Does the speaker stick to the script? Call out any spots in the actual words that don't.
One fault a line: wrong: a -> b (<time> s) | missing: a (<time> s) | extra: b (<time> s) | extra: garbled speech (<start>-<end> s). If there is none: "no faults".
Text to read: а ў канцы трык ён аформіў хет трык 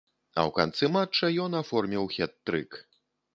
wrong: трык -> матча (0.9 s)